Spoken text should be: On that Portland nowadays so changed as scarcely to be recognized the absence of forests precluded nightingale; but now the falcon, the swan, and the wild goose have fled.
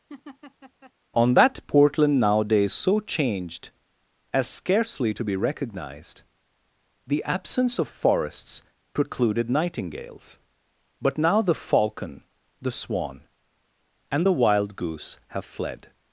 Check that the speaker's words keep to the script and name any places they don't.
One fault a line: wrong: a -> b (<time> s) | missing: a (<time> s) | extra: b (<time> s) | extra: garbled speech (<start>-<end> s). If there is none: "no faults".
wrong: nightingale -> nightingales (9.5 s)